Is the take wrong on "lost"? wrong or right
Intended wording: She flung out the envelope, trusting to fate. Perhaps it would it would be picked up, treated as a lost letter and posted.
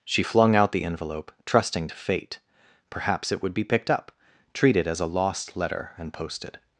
right